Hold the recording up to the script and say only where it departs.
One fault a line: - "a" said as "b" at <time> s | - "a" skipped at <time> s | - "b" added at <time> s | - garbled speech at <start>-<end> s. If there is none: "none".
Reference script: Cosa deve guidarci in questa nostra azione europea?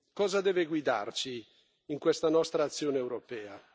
none